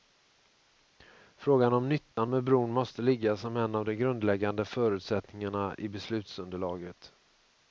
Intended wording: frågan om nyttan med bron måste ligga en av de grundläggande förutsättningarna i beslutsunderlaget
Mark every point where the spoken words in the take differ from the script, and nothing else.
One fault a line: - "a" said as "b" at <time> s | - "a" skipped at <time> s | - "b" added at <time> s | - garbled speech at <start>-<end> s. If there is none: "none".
- "som" added at 3.4 s